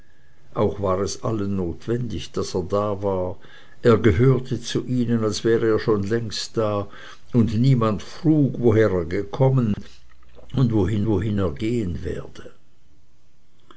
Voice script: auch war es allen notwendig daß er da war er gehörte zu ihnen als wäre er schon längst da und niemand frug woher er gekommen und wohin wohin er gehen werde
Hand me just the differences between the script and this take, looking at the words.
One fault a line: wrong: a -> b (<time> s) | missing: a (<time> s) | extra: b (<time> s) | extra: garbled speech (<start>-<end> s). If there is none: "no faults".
no faults